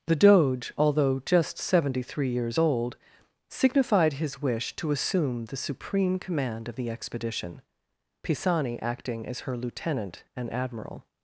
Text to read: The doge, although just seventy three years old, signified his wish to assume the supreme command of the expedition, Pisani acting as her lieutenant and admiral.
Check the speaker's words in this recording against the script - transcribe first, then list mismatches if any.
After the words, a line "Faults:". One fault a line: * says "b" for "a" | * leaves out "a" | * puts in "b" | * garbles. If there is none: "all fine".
The doge, although just seventy three years old, signified his wish to assume the supreme command of the expedition, Pisani acting as her lieutenant and admiral.
Faults:
all fine